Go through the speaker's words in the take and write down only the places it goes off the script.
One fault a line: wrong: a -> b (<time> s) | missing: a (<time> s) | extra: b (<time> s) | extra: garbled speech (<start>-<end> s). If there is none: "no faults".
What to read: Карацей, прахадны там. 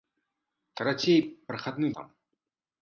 no faults